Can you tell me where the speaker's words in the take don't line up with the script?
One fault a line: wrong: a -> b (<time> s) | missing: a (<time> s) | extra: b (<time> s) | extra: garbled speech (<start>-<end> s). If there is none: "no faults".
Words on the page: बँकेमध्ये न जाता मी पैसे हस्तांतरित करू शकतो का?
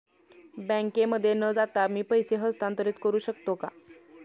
no faults